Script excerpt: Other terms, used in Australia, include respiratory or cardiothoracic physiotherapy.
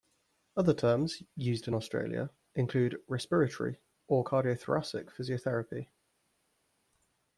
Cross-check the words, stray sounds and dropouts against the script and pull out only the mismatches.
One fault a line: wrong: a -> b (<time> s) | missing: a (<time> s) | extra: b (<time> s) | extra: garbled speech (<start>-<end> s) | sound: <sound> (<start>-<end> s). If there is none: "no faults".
no faults